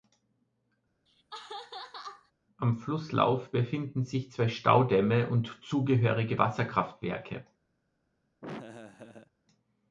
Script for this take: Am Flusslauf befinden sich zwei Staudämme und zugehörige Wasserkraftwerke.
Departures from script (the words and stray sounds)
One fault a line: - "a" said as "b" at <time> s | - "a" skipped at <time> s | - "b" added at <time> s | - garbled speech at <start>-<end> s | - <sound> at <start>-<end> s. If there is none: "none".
- laugh at 1.1-2.3 s
- laugh at 8.4-9.3 s